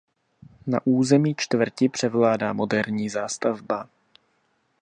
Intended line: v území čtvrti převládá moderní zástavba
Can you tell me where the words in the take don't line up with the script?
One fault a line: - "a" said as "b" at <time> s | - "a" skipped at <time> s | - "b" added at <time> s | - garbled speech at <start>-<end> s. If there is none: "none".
- "v" said as "na" at 0.7 s